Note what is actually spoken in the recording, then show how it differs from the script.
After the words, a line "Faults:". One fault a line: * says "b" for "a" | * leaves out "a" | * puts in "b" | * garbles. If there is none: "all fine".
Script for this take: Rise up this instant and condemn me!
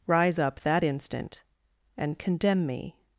Rise up that instant and condemn me!
Faults:
* says "that" for "this"